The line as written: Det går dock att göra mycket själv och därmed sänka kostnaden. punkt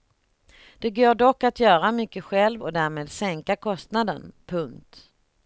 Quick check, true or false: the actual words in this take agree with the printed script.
true